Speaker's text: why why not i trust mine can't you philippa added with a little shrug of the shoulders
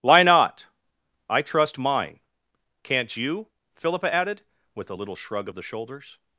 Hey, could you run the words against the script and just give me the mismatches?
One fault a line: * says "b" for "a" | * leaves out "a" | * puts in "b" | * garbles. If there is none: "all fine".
* leaves out "why"